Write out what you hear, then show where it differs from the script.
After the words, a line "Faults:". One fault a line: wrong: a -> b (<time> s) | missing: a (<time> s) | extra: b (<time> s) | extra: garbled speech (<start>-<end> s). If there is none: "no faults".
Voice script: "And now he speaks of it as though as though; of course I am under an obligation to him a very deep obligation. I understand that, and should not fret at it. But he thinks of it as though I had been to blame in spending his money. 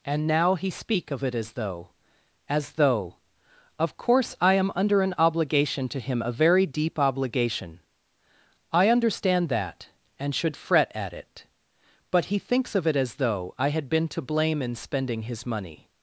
"And now he speak of it as though as though; of course I am under an obligation to him a very deep obligation. I understand that, and should fret at it. But he thinks of it as though I had been to blame in spending his money.
Faults:
wrong: speaks -> speak (0.7 s)
missing: not (10.6 s)